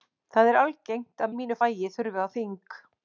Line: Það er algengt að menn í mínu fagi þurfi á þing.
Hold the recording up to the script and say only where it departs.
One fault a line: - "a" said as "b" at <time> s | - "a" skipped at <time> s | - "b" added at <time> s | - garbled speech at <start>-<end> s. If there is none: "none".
- "menn" skipped at 1.4 s